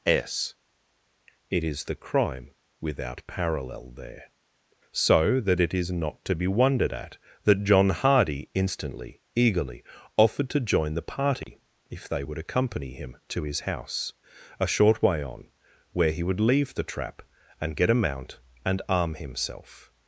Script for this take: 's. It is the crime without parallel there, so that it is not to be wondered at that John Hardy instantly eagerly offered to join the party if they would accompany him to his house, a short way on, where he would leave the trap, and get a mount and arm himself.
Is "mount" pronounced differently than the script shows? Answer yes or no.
no